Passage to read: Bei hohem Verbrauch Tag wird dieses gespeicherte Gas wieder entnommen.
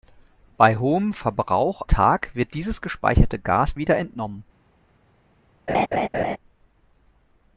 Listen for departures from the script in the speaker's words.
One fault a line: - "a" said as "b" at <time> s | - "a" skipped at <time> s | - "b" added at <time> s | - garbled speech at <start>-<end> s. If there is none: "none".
none